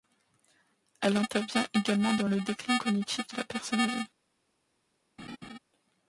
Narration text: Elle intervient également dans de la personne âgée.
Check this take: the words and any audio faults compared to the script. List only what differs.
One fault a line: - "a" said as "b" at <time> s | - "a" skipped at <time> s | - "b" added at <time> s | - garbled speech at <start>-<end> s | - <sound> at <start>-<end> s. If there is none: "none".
- "le déclin cognitif" added at 2.3 s
- laugh at 5.2-5.6 s